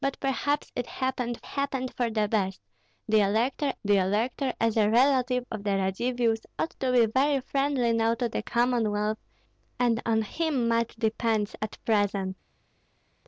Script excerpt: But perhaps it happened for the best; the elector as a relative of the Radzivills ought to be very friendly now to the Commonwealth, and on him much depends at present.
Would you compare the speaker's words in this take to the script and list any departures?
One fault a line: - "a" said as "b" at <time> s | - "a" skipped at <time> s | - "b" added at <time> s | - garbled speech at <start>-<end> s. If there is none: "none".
- "happened" added at 1.4 s
- "the elector" added at 3.8 s